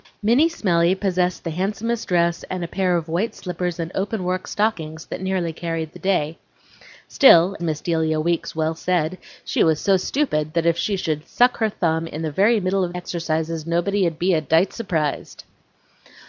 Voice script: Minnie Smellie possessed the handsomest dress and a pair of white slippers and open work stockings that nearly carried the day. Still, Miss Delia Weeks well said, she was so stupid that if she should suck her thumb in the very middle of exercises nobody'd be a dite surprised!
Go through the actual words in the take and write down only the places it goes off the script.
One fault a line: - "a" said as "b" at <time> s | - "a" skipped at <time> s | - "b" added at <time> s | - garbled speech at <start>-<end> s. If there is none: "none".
none